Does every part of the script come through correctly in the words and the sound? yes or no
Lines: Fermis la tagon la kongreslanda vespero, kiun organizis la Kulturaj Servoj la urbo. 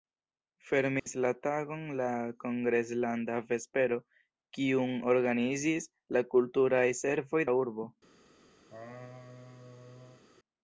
no